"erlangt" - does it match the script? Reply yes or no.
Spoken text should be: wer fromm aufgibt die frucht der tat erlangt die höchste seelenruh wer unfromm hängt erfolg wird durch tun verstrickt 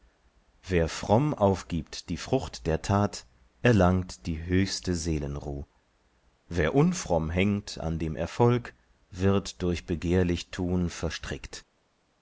yes